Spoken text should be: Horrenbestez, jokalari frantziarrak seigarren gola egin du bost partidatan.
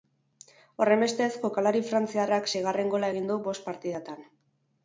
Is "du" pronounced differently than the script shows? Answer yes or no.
no